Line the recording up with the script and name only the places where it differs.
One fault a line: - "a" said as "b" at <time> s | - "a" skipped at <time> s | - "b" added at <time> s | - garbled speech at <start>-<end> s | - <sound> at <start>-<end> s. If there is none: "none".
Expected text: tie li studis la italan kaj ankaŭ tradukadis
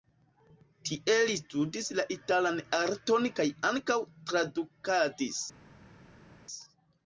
- "arton" added at 2.8 s